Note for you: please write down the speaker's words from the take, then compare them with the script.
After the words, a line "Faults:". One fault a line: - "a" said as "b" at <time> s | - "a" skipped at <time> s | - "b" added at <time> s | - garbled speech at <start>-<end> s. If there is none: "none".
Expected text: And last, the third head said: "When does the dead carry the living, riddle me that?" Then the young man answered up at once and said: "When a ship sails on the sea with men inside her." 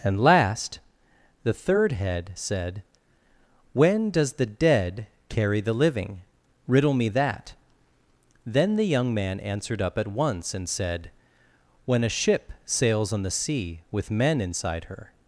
And last, the third head said: "When does the dead carry the living, riddle me that?" Then the young man answered up at once and said: "When a ship sails on the sea with men inside her."
Faults:
none